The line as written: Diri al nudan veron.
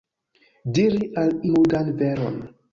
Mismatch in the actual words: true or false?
false